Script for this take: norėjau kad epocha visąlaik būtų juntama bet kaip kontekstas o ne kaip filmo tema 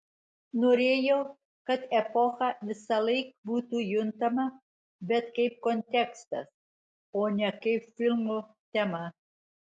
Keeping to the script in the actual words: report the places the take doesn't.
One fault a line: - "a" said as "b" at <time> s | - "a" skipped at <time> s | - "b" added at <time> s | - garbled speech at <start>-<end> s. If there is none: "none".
none